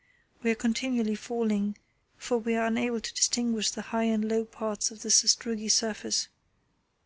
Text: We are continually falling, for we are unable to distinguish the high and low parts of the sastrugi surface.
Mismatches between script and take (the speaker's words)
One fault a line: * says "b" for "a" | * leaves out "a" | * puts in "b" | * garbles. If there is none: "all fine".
all fine